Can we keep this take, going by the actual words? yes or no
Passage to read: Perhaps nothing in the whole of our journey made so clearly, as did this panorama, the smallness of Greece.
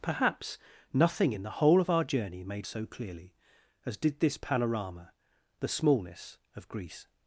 yes